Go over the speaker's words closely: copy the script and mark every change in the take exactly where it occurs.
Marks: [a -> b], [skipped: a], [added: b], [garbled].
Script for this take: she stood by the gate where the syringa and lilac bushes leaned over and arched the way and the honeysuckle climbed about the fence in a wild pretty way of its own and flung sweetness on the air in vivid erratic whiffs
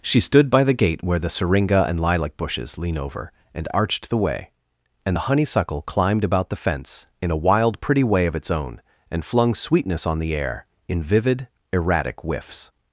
she stood by the gate where the syringa and lilac bushes [leaned -> lean] over and arched the way and the honeysuckle climbed about the fence in a wild pretty way of its own and flung sweetness on the air in vivid erratic whiffs